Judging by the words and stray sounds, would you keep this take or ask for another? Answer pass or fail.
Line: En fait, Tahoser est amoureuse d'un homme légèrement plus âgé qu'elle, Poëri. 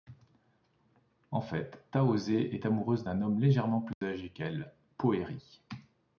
fail